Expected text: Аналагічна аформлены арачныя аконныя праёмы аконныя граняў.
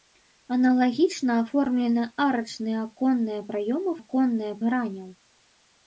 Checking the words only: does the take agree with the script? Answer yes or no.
yes